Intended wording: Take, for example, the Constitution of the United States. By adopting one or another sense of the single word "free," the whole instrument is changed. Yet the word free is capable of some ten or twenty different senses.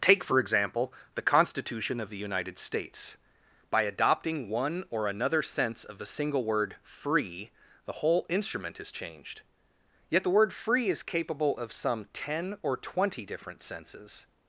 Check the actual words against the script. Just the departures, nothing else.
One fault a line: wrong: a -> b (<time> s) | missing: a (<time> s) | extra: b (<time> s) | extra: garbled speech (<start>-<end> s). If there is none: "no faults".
no faults